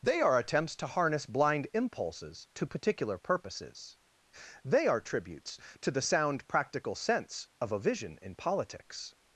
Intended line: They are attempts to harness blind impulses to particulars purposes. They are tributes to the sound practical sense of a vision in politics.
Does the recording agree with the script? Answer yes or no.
no